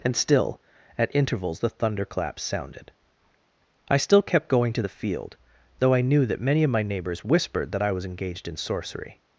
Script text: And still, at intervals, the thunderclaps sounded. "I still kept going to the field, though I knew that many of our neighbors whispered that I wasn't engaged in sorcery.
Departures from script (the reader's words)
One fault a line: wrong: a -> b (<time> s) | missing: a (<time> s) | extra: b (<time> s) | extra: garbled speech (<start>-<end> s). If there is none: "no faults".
wrong: our -> my (6.7 s)
wrong: wasn't -> was (7.9 s)